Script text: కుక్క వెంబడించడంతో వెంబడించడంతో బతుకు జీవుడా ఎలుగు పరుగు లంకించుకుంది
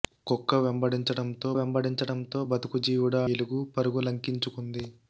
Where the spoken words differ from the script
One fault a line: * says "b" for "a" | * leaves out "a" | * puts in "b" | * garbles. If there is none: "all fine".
all fine